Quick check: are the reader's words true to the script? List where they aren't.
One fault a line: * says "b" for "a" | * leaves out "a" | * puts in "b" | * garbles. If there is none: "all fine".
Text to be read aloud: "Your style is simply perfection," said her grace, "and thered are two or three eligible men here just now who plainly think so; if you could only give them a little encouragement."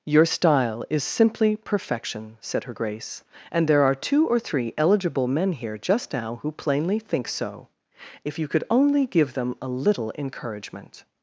* says "there" for "thered"